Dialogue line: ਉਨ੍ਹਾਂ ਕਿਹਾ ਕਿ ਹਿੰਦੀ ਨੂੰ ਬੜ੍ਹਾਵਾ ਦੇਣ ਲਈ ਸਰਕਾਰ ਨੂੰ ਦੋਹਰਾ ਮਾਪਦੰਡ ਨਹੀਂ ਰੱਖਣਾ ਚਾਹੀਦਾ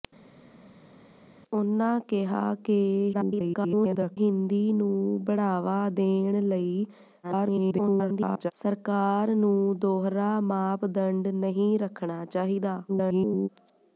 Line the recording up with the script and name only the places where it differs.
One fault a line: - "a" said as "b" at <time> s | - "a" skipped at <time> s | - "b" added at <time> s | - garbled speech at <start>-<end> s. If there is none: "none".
- garbled speech at 3.1-4.2 s
- garbled speech at 7.2-8.5 s
- garbled speech at 12.9-13.5 s